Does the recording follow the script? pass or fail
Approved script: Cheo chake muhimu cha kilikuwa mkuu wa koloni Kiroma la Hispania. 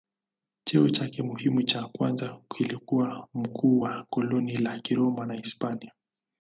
fail